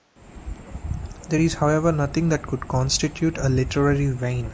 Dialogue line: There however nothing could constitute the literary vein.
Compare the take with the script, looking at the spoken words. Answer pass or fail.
fail